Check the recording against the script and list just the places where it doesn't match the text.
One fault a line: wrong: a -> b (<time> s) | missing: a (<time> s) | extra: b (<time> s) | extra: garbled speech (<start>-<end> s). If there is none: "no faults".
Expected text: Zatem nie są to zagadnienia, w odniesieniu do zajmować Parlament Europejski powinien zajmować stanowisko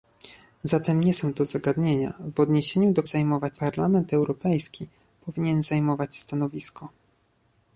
no faults